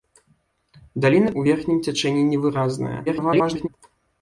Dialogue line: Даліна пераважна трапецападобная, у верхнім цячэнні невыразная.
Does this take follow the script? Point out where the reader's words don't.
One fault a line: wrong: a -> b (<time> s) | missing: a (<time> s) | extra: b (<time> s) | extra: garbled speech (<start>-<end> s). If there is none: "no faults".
missing: пераважна трапецападобная (1.3 s)
extra: garbled speech (3.1-3.7 s)